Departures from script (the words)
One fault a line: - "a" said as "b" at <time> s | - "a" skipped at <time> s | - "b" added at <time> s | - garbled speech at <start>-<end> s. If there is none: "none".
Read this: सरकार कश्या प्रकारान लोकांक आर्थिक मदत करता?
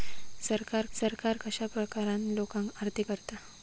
- "सरकार" added at 0.9 s
- "मदत" skipped at 3.1 s